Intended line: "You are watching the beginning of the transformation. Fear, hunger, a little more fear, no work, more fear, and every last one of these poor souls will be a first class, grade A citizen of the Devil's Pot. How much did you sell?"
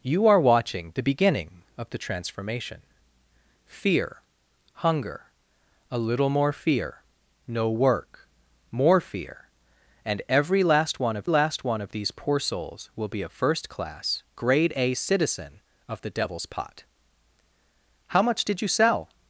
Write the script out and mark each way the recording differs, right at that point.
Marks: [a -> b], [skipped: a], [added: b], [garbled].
"You are watching the beginning of the transformation. Fear, hunger, a little more fear, no work, more fear, and every last one of [added: last one of] these poor souls will be a first class, grade A citizen of the Devil's Pot. How much did you sell?"